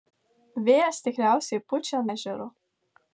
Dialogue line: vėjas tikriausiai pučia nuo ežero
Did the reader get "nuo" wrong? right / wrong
wrong